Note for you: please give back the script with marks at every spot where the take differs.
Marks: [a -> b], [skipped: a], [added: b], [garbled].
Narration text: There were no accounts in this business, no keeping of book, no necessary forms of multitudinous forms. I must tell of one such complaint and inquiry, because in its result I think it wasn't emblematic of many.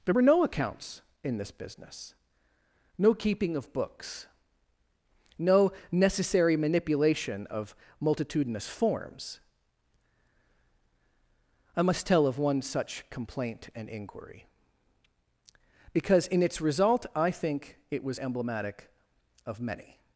There were no accounts in this business, no keeping of [book, -> books] no necessary [forms -> manipulation] of multitudinous forms. I must tell of one such complaint and inquiry, because in its result I think it [wasn't -> was] emblematic of many.